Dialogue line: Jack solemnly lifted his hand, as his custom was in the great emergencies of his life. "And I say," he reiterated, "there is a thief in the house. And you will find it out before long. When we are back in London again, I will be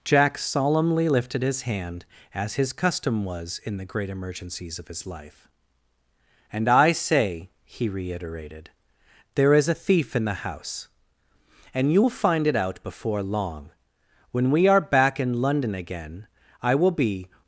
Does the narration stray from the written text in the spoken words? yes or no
no